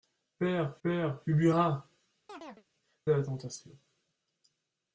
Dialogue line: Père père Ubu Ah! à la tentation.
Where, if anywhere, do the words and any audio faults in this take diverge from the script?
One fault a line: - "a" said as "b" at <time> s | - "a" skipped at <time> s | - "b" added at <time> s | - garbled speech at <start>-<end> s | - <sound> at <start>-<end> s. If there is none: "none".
- chirp at 2.3-2.7 s